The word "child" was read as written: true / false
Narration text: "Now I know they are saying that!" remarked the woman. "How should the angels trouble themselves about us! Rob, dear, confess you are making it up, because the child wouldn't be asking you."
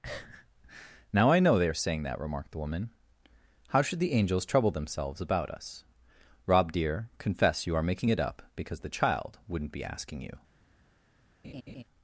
true